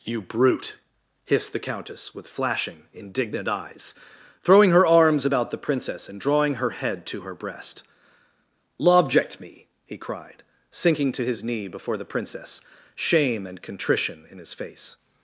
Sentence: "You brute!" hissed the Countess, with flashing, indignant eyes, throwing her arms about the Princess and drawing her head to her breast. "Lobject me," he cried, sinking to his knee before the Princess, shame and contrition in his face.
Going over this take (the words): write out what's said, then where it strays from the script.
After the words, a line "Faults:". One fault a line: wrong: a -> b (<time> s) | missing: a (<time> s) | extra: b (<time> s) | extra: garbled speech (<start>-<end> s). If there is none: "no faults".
"You brute!" hissed the Countess, with flashing, indignant eyes, throwing her arms about the Princess and drawing her head to her breast. "Lobject me," he cried, sinking to his knee before the Princess, shame and contrition in his face.
Faults:
no faults